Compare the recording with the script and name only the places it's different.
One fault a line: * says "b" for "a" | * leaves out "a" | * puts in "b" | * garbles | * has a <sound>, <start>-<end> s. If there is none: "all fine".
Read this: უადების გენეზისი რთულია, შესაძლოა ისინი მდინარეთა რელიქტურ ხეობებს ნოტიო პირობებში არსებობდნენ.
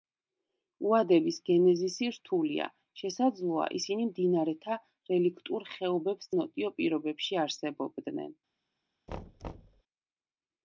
* has a thud, 9.1-9.8 s